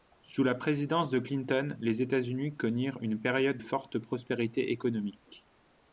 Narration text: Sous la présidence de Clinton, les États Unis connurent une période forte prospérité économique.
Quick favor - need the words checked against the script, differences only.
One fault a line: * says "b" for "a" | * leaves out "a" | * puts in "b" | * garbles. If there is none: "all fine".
all fine